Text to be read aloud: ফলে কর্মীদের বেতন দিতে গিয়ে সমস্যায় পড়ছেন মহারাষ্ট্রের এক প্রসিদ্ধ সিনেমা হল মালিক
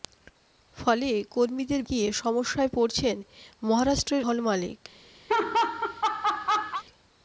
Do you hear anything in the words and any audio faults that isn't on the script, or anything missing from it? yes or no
yes